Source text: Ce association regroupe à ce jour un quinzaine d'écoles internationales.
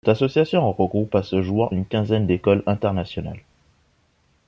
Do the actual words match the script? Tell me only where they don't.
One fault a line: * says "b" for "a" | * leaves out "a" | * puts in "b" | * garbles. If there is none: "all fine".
* says "Cette" for "Ce"
* says "une" for "un"